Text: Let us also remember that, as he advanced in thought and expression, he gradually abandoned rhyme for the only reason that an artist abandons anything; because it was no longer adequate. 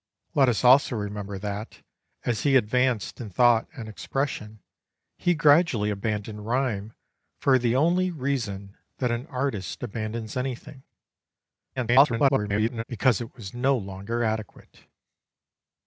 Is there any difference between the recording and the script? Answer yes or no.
yes